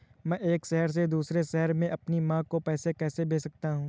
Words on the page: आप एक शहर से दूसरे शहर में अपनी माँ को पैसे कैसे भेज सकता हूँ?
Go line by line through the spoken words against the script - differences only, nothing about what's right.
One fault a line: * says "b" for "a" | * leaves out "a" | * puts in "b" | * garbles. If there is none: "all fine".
* says "मैं" for "आप"